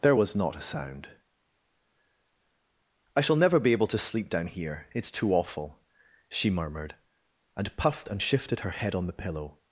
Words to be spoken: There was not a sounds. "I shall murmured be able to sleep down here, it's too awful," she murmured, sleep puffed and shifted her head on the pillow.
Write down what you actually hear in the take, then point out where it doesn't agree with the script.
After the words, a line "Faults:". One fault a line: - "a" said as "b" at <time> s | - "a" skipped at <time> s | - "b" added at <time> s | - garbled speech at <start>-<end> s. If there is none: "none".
There was not a sound. "I shall never be able to sleep down here, it's too awful," she murmured, and puffed and shifted her head on the pillow.
Faults:
- "sounds" said as "sound" at 0.6 s
- "murmured" said as "never" at 3.4 s
- "sleep" said as "and" at 7.5 s